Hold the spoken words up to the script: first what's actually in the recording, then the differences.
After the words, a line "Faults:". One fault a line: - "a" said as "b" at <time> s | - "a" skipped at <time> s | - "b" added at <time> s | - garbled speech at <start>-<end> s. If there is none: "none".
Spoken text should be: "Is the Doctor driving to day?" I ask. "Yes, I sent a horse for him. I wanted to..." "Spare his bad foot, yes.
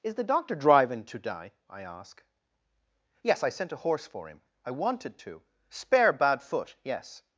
"Is the Doctor driving to day?" I ask. "Yes, I sent a horse for him. I wanted to..." "Spare bad foot, yes.
Faults:
- "his" skipped at 6.1 s